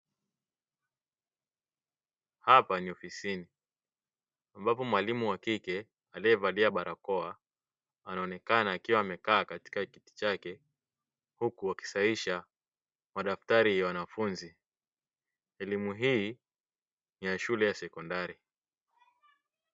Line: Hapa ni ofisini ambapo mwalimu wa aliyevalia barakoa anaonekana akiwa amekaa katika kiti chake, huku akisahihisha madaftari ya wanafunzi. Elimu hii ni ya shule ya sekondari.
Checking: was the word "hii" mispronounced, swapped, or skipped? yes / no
no